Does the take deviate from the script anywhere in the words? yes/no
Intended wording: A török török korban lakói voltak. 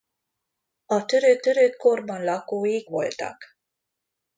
no